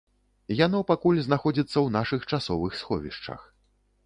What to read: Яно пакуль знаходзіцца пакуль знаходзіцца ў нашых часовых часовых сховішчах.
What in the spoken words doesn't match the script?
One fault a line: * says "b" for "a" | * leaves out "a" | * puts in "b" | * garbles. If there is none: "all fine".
* leaves out "пакуль знаходзіцца"
* leaves out "часовых"